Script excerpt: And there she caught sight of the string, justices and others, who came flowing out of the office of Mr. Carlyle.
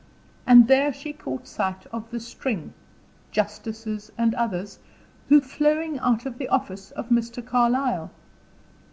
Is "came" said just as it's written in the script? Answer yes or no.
no